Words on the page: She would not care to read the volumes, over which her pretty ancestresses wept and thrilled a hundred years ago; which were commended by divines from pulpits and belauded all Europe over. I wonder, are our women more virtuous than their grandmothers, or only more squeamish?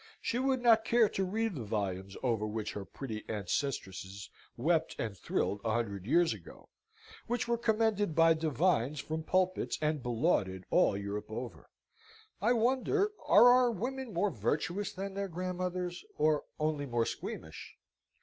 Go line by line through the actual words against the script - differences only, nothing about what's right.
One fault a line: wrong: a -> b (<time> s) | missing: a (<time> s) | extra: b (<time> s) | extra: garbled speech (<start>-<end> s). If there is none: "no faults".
no faults